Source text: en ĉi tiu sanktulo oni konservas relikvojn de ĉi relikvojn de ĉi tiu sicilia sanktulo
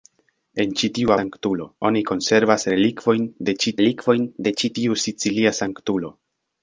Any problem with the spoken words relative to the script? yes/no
no